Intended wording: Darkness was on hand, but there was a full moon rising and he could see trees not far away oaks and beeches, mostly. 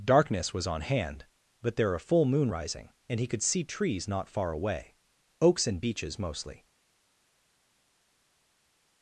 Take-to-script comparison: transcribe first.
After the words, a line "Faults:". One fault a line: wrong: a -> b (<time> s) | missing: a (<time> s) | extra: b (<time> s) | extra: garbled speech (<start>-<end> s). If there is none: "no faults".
Darkness was on hand, but there a full moon rising and he could see trees not far away oaks and beeches, mostly.
Faults:
missing: was (1.9 s)